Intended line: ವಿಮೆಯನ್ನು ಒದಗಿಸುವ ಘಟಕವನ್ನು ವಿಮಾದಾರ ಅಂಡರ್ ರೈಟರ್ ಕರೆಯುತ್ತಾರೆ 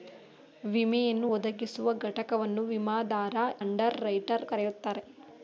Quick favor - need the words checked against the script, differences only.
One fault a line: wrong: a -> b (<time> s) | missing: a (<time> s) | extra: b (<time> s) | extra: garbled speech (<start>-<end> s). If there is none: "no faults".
no faults